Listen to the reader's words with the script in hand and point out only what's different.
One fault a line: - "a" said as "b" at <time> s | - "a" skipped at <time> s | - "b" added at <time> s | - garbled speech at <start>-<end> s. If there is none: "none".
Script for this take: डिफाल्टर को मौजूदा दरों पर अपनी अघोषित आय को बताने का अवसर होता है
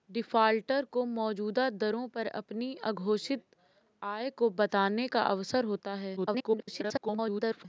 - garbled speech at 6.2-7.7 s